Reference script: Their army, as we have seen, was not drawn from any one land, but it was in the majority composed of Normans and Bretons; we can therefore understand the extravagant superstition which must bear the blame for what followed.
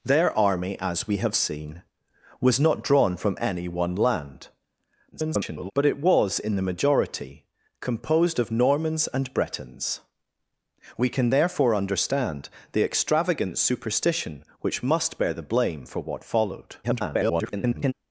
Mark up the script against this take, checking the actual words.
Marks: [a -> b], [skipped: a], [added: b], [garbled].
Their army, as we have seen, was not drawn from any one land, [garbled] but it was in the majority composed of Normans and Bretons; we can therefore understand the extravagant superstition which must bear the blame for what followed. [garbled]